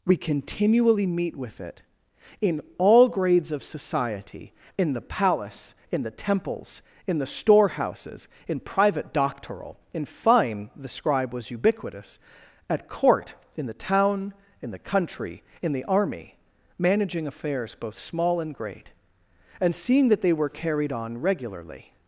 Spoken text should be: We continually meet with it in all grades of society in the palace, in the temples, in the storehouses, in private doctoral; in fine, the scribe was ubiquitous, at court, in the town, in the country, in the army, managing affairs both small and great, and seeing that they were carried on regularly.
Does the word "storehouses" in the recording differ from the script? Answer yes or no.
no